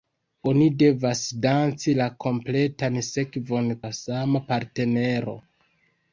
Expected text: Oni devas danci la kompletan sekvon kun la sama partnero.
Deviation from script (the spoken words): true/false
true